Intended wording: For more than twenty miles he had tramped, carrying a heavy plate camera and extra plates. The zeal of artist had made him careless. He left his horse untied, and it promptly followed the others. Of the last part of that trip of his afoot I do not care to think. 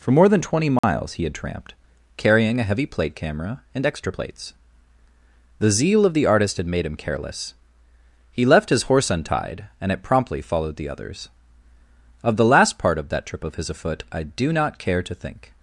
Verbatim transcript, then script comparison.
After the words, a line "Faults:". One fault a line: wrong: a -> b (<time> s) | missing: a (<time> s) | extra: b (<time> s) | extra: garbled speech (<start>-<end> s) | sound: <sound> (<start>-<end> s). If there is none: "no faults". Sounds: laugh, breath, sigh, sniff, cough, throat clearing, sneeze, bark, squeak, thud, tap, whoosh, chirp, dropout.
For more than twenty miles he had tramped, carrying a heavy plate camera and extra plates. The zeal of the artist had made him careless. He left his horse untied, and it promptly followed the others. Of the last part of that trip of his afoot I do not care to think.
Faults:
sound: dropout (0.8-0.8 s)
extra: the (6.1 s)